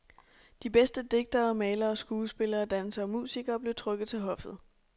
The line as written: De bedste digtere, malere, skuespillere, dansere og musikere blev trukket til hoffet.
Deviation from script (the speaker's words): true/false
false